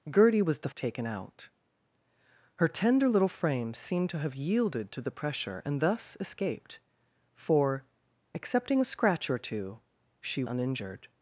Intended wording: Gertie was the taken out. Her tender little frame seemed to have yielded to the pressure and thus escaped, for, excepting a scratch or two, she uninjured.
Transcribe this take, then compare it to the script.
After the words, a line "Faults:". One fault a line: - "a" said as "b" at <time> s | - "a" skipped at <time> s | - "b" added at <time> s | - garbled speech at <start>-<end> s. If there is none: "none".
Gertie was the taken out. Her tender little frame seemed to have yielded to the pressure and thus escaped, for, excepting a scratch or two, she uninjured.
Faults:
none